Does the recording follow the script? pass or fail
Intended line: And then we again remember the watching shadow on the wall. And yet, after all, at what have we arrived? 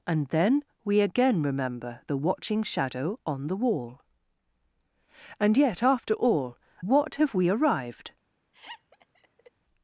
fail